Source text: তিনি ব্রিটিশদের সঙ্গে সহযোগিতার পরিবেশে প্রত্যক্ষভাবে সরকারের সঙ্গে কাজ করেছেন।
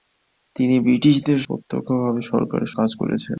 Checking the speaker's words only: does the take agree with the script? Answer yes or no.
no